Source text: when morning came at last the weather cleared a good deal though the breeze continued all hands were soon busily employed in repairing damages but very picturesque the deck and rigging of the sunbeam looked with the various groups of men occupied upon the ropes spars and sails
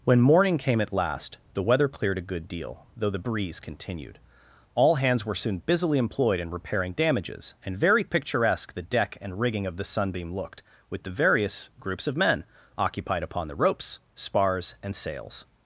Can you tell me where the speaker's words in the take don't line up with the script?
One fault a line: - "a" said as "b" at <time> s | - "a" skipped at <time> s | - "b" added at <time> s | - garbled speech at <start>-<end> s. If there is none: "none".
- "but" said as "and" at 7.6 s